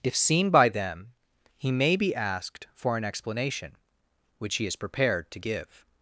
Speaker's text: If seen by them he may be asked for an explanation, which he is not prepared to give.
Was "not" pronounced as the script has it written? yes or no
no